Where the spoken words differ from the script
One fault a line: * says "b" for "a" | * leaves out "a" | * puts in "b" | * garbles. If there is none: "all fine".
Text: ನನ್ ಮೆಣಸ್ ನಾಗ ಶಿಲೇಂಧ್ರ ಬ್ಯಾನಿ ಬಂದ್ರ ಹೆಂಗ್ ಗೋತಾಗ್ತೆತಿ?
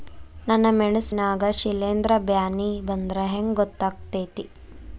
all fine